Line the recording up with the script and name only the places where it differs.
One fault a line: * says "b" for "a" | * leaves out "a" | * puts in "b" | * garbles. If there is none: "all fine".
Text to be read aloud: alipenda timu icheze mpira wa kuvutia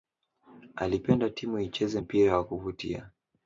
all fine